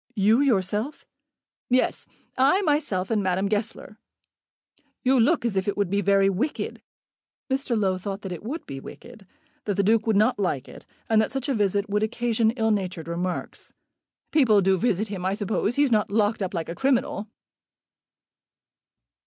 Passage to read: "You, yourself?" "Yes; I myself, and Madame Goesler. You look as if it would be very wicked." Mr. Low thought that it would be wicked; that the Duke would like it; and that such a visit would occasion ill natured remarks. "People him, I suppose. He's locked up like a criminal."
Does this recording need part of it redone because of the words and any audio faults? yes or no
yes